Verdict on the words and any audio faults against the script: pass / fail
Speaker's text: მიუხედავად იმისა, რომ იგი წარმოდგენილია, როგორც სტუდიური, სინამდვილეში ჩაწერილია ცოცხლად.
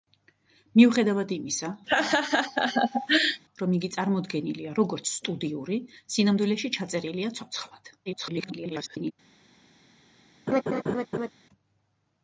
fail